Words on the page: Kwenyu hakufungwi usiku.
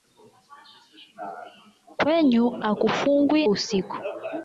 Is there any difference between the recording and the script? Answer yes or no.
no